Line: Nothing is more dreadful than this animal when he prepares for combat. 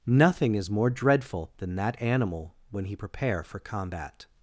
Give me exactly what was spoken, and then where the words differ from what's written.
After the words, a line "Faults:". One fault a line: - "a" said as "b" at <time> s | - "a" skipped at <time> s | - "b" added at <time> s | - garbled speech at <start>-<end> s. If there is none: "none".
Nothing is more dreadful than that animal when he prepare for combat.
Faults:
- "this" said as "that" at 1.8 s
- "prepares" said as "prepare" at 2.9 s